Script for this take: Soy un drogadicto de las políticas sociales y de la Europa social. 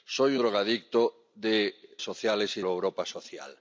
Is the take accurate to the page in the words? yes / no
no